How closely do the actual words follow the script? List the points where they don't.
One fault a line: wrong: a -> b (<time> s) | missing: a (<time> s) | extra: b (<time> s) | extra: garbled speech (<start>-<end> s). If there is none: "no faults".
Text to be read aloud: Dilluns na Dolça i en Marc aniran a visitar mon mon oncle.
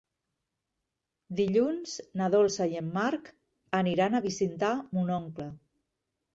missing: mon (5.2 s)